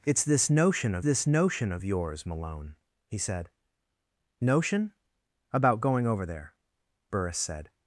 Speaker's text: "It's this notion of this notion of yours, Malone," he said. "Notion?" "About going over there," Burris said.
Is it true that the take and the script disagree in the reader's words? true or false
false